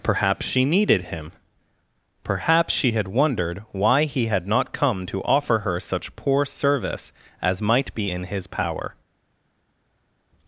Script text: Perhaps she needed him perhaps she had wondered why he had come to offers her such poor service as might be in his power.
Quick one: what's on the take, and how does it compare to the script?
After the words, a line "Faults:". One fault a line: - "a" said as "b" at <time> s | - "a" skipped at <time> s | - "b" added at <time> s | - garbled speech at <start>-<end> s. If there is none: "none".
Perhaps she needed him perhaps she had wondered why he had not come to offer her such poor service as might be in his power.
Faults:
- "not" added at 4.5 s
- "offers" said as "offer" at 5.2 s